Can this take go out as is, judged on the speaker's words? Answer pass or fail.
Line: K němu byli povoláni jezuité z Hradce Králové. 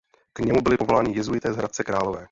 pass